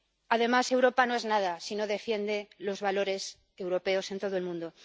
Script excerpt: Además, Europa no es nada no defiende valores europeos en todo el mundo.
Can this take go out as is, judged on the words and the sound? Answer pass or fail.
fail